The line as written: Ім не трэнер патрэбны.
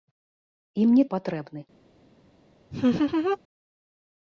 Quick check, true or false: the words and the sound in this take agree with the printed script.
false